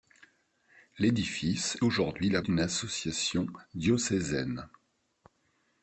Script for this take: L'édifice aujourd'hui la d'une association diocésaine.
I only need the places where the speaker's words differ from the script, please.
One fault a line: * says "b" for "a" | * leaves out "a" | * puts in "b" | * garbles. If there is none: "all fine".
all fine